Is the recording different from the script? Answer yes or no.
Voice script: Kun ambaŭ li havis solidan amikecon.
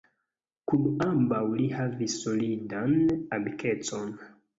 no